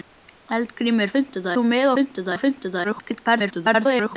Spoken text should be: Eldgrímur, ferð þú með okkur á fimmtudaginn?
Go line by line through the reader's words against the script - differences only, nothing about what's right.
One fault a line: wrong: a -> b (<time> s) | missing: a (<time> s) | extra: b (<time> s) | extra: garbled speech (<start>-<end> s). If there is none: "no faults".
wrong: ferð -> fimmtudaginn (1.1 s)
wrong: okkur -> fimmtudaginn (2.0 s)
extra: garbled speech (2.8-4.2 s)